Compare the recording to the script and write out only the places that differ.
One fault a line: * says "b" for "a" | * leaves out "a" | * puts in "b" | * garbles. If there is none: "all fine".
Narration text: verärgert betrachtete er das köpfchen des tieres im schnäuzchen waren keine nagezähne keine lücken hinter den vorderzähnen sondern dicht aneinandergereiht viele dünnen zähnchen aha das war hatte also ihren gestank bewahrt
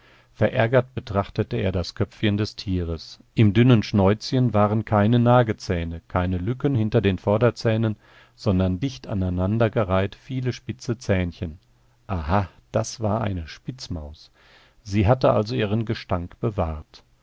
* puts in "dünnen"
* says "spitze" for "dünnen"
* puts in "eine spitzmaus sie"